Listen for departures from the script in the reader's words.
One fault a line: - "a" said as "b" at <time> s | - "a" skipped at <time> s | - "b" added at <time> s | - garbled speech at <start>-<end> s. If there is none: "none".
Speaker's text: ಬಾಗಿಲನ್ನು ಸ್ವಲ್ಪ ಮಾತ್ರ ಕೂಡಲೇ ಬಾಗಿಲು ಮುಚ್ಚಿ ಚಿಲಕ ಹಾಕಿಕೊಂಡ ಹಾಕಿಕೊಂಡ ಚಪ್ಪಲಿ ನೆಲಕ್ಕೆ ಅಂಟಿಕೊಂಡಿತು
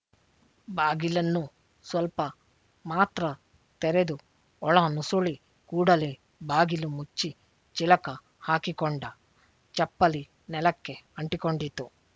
- "ತೆರೆದು ಒಳ ನುಸುಳಿ" added at 3.8 s
- "ಹಾಕಿಕೊಂಡ" skipped at 9.0 s